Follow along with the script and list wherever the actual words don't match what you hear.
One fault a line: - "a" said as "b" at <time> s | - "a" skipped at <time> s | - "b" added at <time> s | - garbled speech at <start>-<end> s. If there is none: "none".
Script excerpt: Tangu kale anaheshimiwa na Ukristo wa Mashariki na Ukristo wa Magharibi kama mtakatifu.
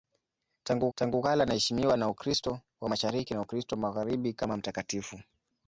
- "tangu" added at 0.9 s